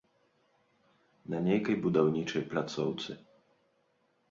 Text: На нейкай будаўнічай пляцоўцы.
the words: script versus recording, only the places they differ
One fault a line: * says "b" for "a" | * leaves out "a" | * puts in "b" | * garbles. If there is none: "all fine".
all fine